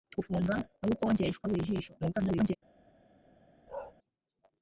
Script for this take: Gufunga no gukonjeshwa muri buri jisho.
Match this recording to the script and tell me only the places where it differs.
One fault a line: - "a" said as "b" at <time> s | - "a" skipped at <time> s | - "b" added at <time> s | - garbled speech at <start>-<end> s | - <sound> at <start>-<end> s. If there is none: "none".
- "muri" skipped at 1.4 s
- garbled speech at 2.0-2.6 s
- bark at 3.7-3.9 s